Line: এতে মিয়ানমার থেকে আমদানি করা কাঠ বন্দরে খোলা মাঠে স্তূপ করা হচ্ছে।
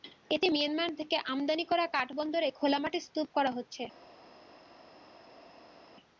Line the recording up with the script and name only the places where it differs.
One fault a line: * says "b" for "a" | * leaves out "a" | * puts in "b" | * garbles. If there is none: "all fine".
all fine